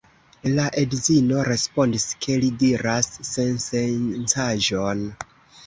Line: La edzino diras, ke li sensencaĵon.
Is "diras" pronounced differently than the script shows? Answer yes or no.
yes